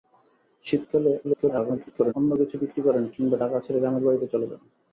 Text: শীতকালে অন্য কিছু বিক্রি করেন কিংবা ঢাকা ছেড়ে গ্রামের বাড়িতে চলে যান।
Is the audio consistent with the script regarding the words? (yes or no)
no